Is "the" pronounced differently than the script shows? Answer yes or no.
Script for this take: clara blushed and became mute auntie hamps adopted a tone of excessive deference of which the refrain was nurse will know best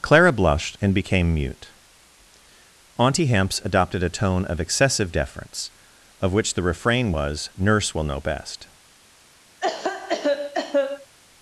no